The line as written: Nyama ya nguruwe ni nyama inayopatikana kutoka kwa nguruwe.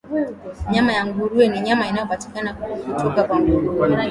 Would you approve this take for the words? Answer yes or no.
yes